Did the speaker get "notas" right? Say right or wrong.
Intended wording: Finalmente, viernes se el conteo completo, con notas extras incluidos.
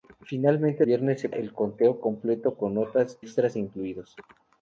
right